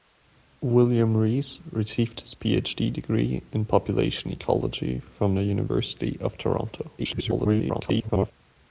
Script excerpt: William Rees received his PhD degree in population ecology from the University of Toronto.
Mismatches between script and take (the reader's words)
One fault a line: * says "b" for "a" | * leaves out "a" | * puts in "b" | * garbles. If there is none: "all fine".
* garbles